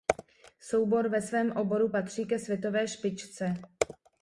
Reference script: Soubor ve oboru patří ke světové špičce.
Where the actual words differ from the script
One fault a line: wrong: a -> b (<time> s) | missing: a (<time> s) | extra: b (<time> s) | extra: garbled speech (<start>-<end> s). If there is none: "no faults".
extra: svém (1.2 s)